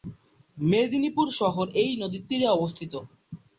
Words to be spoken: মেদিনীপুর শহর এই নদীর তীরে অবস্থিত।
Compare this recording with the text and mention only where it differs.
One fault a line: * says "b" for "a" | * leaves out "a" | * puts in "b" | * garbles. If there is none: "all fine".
all fine